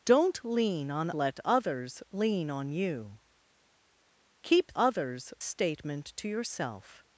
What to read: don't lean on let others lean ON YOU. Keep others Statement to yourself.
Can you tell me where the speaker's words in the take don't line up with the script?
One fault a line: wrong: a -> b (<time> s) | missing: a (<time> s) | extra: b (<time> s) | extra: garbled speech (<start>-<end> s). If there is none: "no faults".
no faults